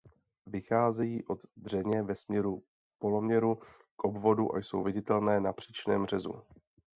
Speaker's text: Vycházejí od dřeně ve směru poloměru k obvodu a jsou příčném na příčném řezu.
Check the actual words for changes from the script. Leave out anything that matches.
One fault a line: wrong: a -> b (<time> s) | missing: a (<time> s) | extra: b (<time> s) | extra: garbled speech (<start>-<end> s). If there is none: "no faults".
wrong: příčném -> viditelné (4.8 s)